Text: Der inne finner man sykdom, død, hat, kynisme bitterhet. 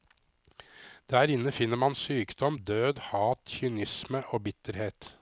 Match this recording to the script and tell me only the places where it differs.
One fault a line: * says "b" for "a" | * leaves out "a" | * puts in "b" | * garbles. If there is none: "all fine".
* puts in "og"